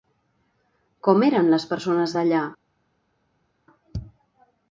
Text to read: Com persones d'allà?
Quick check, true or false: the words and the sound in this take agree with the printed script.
false